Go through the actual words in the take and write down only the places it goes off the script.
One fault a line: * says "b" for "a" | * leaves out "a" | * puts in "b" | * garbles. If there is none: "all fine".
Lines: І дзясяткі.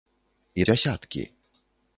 all fine